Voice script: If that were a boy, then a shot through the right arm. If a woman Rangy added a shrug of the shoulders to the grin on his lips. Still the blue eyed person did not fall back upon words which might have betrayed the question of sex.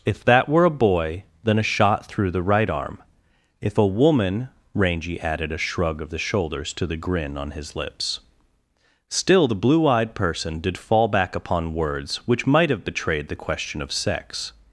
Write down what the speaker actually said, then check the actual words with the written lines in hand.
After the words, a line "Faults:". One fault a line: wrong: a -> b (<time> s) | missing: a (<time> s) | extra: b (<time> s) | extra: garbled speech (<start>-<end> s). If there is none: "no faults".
If that were a boy, then a shot through the right arm. If a woman Rangy added a shrug of the shoulders to the grin on his lips. Still the blue eyed person did fall back upon words which might have betrayed the question of sex.
Faults:
missing: not (10.8 s)